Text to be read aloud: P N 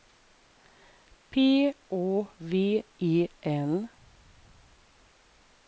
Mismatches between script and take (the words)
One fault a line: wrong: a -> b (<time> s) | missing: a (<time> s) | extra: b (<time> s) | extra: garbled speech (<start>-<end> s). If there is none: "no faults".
extra: Å V E (1.9 s)